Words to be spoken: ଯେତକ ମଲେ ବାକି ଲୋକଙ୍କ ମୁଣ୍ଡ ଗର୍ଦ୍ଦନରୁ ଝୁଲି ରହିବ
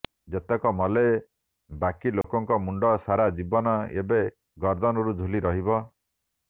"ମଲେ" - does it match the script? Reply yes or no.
yes